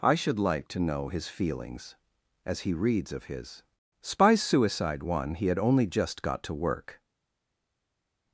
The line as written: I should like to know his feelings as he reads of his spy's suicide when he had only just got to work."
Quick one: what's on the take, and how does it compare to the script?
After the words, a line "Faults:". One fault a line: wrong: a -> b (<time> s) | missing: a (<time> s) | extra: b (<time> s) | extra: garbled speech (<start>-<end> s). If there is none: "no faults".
I should like to know his feelings as he reads of his spy's suicide one he had only just got to work."
Faults:
wrong: when -> one (5.0 s)